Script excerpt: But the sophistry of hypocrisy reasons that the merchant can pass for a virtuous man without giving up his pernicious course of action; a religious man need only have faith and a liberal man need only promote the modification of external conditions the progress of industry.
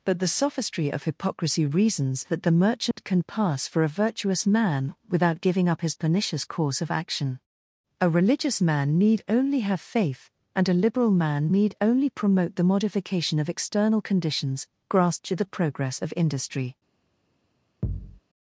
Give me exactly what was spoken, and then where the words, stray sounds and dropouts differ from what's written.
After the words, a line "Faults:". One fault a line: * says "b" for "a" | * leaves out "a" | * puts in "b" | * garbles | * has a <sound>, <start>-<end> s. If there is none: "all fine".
But the sophistry of hypocrisy reasons that the merchant can pass for a virtuous man without giving up his pernicious course of action; a religious man need only have faith and a liberal man need only promote the modification of external conditions grasp to the progress of industry.
Faults:
* has a dropout, 2.9-3.0 s
* puts in "grasp to"
* has a thud, 17.8-18.2 s